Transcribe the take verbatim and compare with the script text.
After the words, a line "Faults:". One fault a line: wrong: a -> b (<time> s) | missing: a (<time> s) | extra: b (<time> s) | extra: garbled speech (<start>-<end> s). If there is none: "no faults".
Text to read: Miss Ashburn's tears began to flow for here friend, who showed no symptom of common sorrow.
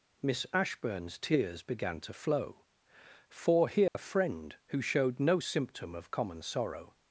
Miss Ashburn's tears began to flow for here friend, who showed no symptom of common sorrow.
Faults:
no faults